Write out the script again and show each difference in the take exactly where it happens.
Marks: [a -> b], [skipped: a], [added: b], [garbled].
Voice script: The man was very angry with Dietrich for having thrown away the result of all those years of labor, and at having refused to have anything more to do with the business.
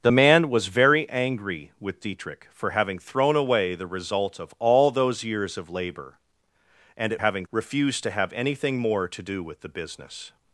The man was very angry with Dietrich for having thrown away the result of all those years of labor, and at having refused to have anything more to do with the business.